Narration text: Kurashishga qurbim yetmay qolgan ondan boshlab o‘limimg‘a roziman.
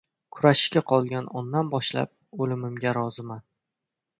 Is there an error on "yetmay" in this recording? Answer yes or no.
yes